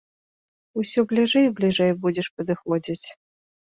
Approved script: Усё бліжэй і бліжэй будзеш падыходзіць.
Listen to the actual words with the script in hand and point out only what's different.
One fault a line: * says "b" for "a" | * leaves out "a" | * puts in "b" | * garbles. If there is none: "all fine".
all fine